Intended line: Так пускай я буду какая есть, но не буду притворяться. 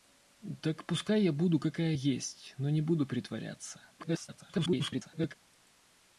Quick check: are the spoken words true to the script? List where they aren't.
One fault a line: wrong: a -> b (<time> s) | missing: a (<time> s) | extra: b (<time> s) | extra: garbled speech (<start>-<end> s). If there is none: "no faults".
extra: garbled speech (4.0-5.4 s)